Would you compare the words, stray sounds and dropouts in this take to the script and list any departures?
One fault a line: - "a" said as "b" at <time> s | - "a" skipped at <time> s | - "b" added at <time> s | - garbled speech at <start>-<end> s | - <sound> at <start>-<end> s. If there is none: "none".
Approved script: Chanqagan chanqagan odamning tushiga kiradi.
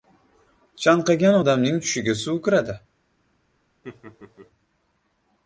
- "chanqagan" skipped at 1.4 s
- "suv" added at 2.2 s
- laugh at 3.8-4.5 s